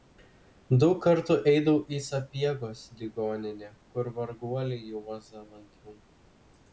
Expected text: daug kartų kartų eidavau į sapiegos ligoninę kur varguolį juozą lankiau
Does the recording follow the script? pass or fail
fail